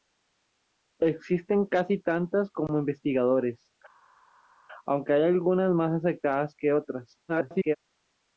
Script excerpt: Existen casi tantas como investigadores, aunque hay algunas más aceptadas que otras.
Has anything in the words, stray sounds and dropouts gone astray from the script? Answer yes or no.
yes